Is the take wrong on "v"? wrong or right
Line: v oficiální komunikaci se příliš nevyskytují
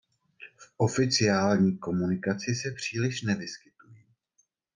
right